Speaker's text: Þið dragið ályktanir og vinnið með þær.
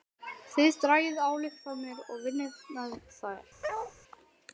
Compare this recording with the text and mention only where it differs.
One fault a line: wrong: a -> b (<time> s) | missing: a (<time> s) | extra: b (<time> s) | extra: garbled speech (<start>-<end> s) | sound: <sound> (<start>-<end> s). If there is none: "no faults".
sound: bark (3.6-3.9 s)